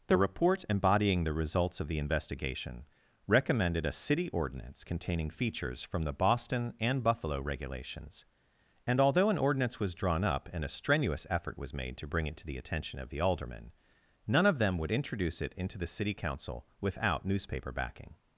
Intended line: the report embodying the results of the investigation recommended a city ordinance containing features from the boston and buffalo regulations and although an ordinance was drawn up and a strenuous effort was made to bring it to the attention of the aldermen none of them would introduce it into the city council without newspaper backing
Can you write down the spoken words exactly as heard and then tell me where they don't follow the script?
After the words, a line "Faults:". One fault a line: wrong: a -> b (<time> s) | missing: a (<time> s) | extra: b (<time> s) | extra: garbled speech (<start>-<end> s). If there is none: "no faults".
the report embodying the results of the investigation recommended a city ordinance containing features from the boston and buffalo regulations and although an ordinance was drawn up and a strenuous effort was made to bring it to the attention of the aldermen none of them would introduce it into the city council without newspaper backing
Faults:
no faults